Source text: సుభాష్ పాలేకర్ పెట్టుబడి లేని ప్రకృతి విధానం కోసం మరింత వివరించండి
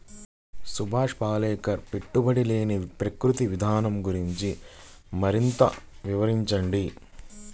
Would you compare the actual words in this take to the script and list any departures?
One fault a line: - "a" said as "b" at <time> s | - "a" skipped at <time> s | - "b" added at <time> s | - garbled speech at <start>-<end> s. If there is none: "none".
- "కోసం" said as "గురించి" at 4.1 s